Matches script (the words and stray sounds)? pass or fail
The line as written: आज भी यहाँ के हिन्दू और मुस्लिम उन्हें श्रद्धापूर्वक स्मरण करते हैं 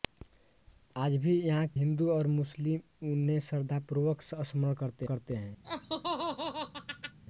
fail